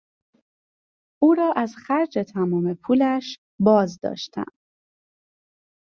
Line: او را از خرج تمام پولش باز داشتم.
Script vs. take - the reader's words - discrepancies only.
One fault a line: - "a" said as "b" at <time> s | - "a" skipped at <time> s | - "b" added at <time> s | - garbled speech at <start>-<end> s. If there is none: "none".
none